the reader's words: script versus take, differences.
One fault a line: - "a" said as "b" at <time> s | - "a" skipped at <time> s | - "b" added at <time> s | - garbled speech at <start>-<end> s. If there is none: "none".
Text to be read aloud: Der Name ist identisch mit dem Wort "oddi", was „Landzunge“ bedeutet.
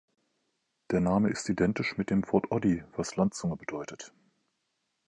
none